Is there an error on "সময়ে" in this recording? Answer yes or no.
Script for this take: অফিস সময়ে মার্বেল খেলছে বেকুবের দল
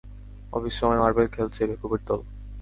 no